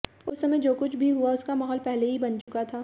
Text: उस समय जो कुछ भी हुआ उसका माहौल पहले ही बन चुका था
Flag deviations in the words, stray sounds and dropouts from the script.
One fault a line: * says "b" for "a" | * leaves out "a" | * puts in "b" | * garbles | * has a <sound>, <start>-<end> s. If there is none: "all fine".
* has a dropout, 2.4-2.5 s